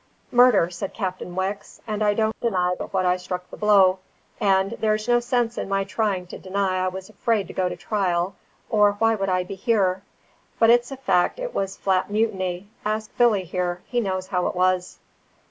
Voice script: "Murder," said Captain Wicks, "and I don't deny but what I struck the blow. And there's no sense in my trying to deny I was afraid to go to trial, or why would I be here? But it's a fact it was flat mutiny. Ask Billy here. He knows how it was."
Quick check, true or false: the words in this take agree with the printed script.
true